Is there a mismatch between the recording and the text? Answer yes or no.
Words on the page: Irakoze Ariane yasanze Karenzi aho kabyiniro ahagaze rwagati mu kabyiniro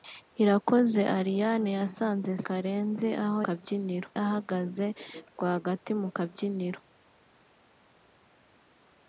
no